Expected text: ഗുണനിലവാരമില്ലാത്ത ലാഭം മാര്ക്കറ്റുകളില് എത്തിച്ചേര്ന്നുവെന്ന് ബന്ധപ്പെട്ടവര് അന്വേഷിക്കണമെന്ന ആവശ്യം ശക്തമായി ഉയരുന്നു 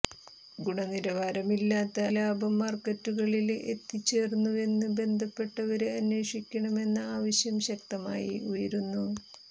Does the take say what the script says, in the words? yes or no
yes